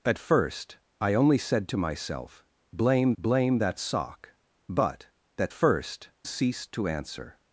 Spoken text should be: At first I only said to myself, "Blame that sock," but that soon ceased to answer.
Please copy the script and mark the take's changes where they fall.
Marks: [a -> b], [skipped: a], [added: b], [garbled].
At first I only said to myself, "Blame [added: blame] that sock," but that [soon -> first] ceased to answer.